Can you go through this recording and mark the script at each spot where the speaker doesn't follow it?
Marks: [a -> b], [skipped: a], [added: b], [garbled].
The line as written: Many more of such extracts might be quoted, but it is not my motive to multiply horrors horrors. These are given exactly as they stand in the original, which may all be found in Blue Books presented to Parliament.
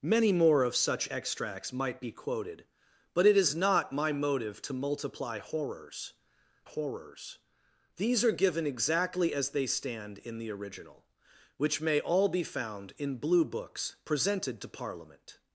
Many more of such extracts might be quoted, but it is not my motive to multiply horrors horrors. These are given exactly as they stand in the original, which may all be found in Blue Books presented to Parliament.